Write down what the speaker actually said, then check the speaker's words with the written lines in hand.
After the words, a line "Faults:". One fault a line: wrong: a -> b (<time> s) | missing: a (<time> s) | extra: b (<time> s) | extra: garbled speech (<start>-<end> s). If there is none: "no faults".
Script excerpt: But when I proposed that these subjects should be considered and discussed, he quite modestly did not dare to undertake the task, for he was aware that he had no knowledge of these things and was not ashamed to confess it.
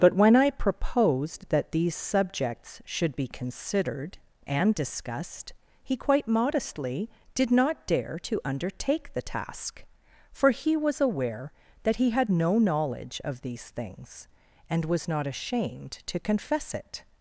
But when I proposed that these subjects should be considered and discussed, he quite modestly did not dare to undertake the task, for he was aware that he had no knowledge of these things and was not ashamed to confess it.
Faults:
no faults